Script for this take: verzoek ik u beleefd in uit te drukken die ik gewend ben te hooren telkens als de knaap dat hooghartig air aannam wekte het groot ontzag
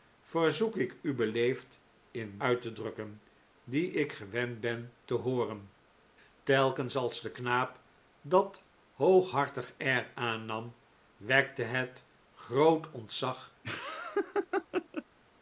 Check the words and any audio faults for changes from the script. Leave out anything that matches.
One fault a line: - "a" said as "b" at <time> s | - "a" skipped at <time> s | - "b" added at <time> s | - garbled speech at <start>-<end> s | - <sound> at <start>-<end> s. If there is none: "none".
- laugh at 13.6-15.0 s